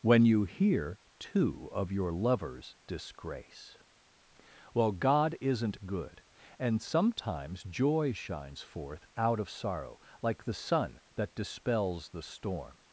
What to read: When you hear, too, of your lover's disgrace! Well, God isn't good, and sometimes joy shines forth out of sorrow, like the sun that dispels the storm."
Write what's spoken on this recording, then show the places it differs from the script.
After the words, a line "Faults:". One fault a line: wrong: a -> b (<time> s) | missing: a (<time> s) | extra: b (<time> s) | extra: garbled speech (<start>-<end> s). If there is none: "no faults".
When you hear, too, of your lover's disgrace! Well, God isn't good, and sometimes joy shines forth out of sorrow, like the sun that dispels the storm."
Faults:
no faults